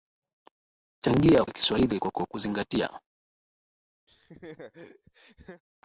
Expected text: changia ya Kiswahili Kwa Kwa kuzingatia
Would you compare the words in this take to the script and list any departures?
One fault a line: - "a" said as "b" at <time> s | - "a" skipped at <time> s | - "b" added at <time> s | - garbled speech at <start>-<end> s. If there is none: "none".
none